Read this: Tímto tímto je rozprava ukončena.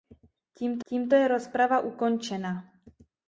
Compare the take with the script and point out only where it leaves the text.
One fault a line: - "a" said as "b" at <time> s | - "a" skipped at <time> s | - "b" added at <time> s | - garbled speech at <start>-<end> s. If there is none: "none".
none